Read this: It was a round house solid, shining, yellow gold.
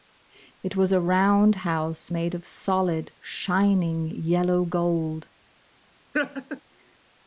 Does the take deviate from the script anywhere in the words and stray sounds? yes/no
yes